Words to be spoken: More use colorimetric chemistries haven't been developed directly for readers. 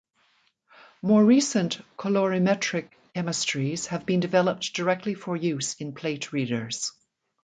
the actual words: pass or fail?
fail